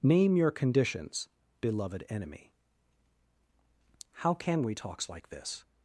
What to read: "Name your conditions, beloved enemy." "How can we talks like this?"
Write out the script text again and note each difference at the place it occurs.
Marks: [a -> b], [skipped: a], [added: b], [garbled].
"Name your conditions, beloved enemy." "How can we talks like this?"